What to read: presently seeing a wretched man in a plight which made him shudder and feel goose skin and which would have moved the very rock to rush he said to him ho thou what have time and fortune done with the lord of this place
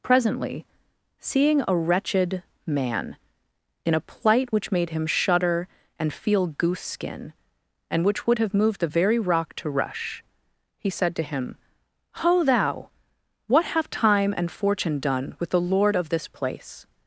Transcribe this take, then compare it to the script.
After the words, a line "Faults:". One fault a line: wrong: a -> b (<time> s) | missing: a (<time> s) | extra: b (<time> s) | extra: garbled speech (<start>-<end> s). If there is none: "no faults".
presently seeing a wretched man in a plight which made him shudder and feel goose skin and which would have moved the very rock to rush he said to him ho thou what have time and fortune done with the lord of this place
Faults:
no faults